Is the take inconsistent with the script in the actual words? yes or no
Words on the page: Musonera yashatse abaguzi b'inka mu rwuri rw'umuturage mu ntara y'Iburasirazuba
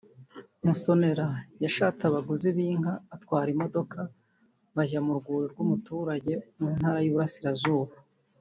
yes